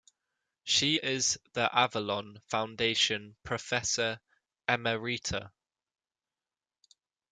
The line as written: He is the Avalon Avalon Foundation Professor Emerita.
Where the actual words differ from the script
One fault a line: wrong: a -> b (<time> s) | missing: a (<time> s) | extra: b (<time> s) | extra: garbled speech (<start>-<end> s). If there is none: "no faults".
wrong: He -> She (0.6 s)
missing: Avalon (2.4 s)